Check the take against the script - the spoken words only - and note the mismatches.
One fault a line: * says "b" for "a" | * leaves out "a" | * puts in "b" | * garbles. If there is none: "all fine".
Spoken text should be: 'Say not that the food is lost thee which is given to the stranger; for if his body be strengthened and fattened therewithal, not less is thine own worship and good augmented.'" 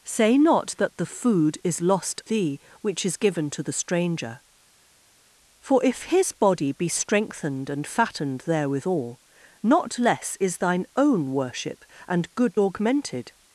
all fine